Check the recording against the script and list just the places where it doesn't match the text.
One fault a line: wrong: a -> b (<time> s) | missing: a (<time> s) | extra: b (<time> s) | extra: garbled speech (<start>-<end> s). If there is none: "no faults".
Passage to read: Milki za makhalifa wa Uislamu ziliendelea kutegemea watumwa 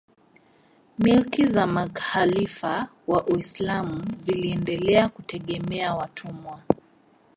no faults